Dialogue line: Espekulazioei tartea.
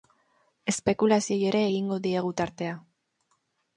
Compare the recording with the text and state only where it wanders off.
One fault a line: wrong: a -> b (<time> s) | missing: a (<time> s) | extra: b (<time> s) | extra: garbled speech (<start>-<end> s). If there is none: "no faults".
extra: ere egingo diegu (1.5 s)